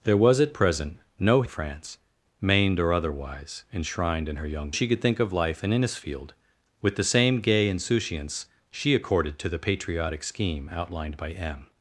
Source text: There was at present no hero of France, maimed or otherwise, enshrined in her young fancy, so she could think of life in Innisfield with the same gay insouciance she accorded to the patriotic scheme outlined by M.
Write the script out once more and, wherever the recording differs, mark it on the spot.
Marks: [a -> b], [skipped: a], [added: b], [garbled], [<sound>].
There was at present no [skipped: hero] of France, maimed or otherwise, enshrined in her young [skipped: fancy, so] she could think of life in Innisfield with the same gay insouciance she accorded to the patriotic scheme outlined by M.